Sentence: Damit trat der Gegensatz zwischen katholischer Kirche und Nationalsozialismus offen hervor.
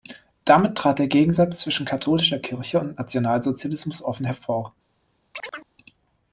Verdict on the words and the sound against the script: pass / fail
fail